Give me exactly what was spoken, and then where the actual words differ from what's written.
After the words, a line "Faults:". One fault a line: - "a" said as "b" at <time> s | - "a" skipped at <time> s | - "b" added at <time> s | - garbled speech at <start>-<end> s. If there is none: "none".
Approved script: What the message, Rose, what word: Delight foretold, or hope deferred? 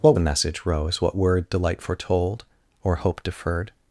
What the message, Rose, what word: Delight foretold, or hope deferred?
Faults:
none